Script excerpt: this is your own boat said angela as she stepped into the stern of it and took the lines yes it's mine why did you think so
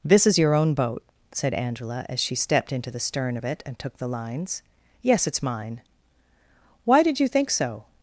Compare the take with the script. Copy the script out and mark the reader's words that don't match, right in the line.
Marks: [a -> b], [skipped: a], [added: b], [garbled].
this is your own boat said angela as she stepped into the stern of it and took the lines yes it's mine why did you think so